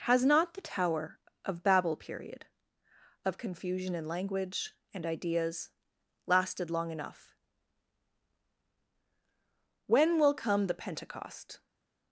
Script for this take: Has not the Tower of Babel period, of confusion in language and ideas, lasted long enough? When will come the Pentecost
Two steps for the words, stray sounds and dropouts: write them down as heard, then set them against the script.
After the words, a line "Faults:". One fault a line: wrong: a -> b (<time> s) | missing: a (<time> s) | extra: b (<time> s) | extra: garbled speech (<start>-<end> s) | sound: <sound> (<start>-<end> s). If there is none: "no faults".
Has not the Tower of Babel period, of confusion in language and ideas, lasted long enough? When will come the Pentecost
Faults:
no faults